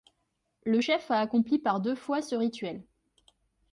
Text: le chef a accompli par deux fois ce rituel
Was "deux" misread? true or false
false